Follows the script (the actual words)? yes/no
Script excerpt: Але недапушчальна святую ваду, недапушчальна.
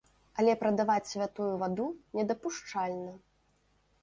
no